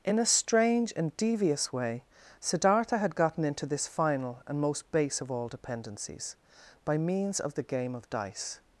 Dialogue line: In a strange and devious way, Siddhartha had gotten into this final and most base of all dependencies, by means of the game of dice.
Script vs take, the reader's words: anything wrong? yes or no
no